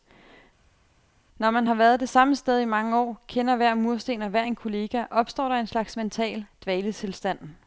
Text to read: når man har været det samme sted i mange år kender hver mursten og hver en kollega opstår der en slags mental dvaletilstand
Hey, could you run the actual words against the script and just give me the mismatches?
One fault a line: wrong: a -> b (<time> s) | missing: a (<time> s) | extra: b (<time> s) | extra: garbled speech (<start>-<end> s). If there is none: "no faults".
no faults